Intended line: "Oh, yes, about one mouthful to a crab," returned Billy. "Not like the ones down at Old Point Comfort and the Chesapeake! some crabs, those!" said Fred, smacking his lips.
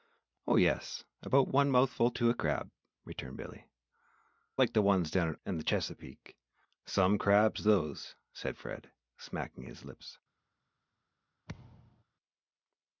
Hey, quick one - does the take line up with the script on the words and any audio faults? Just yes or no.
no